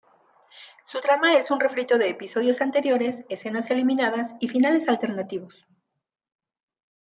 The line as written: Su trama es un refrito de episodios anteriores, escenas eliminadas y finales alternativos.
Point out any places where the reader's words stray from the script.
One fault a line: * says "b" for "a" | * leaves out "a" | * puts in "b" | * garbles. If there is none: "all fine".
all fine